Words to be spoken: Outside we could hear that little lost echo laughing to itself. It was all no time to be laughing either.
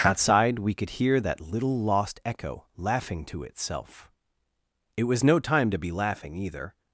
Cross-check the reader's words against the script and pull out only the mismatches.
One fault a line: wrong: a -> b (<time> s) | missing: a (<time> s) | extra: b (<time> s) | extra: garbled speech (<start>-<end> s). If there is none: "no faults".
missing: all (5.2 s)